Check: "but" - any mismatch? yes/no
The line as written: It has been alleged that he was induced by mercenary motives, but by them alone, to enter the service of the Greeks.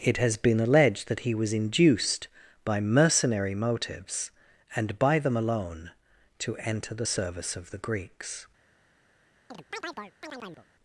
yes